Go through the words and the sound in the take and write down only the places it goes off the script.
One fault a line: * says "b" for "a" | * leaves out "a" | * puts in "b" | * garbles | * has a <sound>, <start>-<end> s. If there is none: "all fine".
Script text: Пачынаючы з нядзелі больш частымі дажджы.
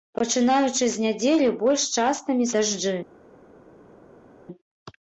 all fine